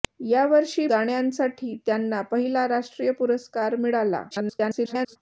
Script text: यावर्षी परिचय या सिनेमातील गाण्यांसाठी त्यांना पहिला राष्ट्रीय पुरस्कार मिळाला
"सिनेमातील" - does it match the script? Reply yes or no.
no